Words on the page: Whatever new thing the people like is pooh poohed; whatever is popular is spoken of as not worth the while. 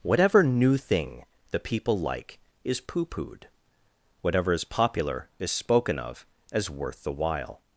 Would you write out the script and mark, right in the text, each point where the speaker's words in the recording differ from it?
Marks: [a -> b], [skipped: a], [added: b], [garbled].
Whatever new thing the people like is pooh poohed; whatever is popular is spoken of as [skipped: not] worth the while.